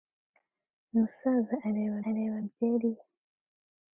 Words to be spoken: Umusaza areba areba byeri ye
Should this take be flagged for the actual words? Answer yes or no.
no